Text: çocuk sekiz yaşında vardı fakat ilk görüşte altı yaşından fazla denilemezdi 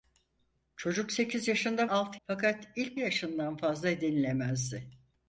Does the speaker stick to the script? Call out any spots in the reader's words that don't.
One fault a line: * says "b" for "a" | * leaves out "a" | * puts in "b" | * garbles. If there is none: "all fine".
* says "altı" for "vardı"
* leaves out "görüşte altı"